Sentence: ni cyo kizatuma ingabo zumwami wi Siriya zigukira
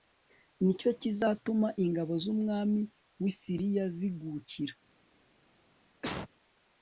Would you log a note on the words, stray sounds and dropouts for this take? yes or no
yes